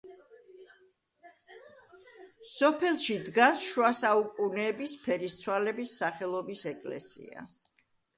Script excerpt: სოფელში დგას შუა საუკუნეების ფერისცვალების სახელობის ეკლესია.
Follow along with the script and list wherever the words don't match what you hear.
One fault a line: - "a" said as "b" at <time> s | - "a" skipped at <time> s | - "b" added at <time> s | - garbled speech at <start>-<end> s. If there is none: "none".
none